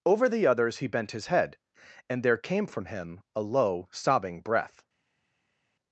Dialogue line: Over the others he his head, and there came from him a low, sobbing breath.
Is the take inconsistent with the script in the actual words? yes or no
yes